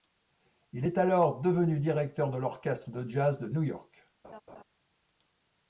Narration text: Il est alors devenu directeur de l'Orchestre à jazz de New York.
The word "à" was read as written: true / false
false